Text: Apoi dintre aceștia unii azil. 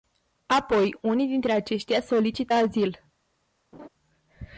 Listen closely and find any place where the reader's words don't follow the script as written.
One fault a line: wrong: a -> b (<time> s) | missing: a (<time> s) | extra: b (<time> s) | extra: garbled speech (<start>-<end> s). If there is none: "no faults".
extra: unii (1.0 s)
wrong: unii -> solicită (2.0 s)